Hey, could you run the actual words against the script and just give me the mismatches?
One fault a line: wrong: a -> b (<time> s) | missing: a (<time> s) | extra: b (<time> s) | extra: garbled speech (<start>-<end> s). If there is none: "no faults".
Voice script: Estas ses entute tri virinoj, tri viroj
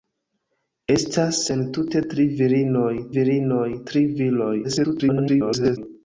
missing: ses (1.4 s)
extra: virinoj (3.2 s)
extra: garbled speech (4.6-5.8 s)